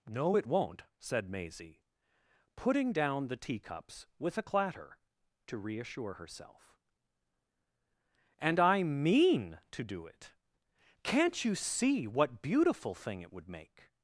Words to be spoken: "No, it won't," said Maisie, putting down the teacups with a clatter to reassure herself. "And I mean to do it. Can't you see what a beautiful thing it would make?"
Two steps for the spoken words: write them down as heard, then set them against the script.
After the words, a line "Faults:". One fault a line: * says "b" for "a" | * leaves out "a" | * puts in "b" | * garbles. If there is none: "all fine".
"No, it won't," said Maisie, putting down the teacups with a clatter to reassure herself. "And I mean to do it. Can't you see what beautiful thing it would make?"
Faults:
* leaves out "a"